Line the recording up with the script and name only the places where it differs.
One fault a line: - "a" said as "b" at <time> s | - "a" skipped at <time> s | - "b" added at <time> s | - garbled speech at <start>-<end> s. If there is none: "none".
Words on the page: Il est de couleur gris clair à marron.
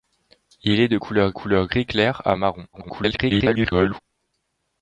- "couleur" added at 1.3 s
- garbled speech at 2.7-4.0 s